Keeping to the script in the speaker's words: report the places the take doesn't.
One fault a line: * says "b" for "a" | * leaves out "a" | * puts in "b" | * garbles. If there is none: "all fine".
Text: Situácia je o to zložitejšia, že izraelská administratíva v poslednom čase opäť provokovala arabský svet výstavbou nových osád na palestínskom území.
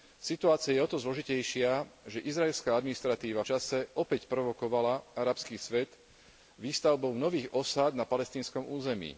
* leaves out "v poslednom"